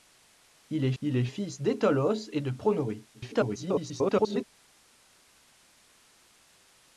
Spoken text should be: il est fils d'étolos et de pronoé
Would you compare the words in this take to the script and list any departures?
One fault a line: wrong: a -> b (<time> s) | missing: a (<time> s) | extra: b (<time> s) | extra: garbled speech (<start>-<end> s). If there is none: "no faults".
extra: il est (1.0 s)
extra: garbled speech (3.1-4.4 s)